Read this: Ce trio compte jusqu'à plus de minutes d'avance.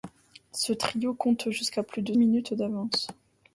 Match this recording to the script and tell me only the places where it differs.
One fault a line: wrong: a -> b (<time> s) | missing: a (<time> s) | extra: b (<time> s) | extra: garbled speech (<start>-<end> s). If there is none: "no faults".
no faults